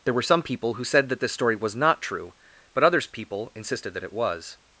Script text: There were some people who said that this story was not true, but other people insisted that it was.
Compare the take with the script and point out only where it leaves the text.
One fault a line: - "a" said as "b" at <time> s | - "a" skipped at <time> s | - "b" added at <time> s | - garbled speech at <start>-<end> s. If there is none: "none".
- "other" said as "others" at 2.8 s